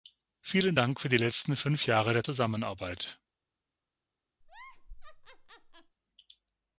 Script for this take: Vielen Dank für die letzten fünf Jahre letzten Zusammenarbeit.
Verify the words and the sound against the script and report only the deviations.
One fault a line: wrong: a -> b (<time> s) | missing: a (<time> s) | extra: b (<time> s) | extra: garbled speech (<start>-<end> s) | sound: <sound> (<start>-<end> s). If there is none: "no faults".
wrong: letzten -> der (2.1 s)
sound: laugh (4.4-6.0 s)